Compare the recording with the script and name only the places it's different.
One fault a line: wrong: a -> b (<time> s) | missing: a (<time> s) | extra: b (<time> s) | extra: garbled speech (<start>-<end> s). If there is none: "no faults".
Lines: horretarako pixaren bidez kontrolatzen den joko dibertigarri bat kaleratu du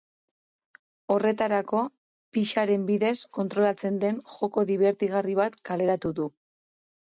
no faults